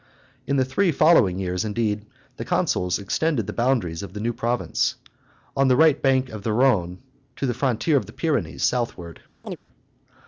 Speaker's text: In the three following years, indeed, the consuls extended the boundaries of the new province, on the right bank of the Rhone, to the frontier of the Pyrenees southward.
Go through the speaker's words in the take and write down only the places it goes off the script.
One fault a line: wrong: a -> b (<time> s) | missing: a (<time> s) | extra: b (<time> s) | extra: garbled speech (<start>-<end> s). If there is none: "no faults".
no faults